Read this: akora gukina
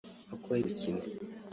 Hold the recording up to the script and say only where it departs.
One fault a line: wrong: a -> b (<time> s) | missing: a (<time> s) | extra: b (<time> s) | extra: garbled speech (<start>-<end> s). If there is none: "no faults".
no faults